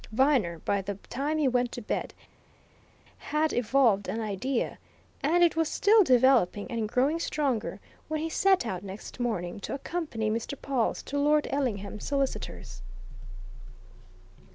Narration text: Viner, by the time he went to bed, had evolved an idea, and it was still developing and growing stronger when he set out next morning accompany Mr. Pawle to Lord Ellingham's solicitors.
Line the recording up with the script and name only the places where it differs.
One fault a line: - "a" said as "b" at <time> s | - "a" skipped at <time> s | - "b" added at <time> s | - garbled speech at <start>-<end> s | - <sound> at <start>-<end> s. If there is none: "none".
- "to" added at 9.6 s